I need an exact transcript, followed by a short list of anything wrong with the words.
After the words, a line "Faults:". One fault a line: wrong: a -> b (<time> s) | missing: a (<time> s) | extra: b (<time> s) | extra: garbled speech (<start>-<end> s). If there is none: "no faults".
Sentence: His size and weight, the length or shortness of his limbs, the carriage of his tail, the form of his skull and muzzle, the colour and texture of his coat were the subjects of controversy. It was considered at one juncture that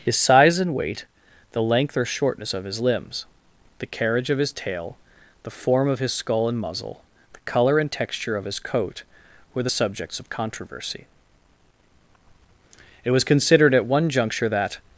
His size and weight, the length or shortness of his limbs, the carriage of his tail, the form of his skull and muzzle, the colour and texture of his coat were the subjects of controversy. It was considered at one juncture that
Faults:
no faults